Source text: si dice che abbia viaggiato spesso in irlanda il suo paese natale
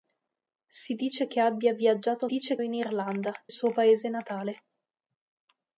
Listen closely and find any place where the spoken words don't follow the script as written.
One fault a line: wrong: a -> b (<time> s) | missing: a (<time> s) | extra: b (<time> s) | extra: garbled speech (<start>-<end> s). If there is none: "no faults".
wrong: spesso -> dice (2.2 s)
missing: il (3.3 s)